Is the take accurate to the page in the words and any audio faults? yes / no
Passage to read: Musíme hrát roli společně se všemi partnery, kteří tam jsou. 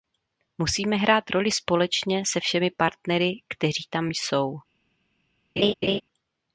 no